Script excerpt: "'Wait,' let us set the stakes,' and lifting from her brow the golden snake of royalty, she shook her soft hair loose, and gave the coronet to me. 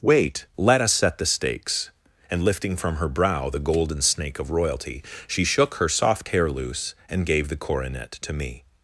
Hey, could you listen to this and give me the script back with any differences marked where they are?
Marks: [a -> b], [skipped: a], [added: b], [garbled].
"'Wait,' let us set the stakes,' and lifting from her brow the golden snake of royalty, she shook her soft hair loose, and gave the coronet to me.